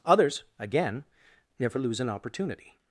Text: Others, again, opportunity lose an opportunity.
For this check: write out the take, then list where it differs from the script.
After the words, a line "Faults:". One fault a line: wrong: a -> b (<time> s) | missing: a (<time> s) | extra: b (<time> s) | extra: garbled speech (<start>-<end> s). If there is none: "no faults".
Others, again, never lose an opportunity.
Faults:
wrong: opportunity -> never (1.6 s)